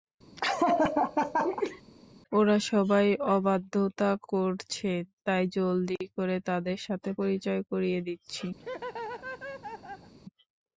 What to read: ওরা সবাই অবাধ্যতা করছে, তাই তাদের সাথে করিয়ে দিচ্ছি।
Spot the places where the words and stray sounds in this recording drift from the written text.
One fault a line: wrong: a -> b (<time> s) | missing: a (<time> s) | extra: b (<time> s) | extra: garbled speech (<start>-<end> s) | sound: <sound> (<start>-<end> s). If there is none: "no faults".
sound: laugh (0.4-1.8 s)
extra: জলদি করে (5.6 s)
extra: পরিচয় (7.2 s)
sound: laugh (8.6-10.1 s)